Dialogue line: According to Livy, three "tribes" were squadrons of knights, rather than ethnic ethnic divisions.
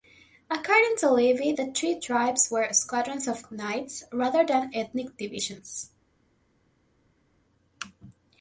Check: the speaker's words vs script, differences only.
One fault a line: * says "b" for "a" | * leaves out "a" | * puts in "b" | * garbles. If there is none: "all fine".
* puts in "the"
* leaves out "ethnic"